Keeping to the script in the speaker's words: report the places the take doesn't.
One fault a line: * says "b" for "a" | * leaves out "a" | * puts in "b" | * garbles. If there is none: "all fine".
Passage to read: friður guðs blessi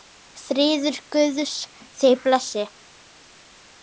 * puts in "þig"